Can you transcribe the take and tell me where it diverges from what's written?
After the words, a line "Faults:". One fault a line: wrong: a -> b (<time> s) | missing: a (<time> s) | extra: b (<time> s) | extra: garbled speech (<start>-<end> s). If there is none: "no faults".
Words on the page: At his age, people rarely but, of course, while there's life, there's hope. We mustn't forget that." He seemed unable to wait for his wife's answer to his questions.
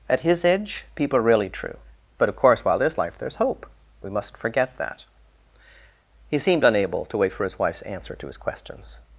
At his age, people are really true but, of course, while there's life, there's hope. We mustn't forget that." He seemed unable to wait for his wife's answer to his questions.
Faults:
wrong: rarely -> are really true (1.2 s)